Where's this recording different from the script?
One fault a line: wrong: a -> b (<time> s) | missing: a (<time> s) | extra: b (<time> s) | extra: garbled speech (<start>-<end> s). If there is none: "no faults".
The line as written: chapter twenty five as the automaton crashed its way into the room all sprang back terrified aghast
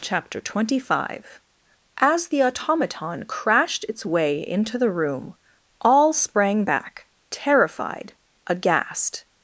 no faults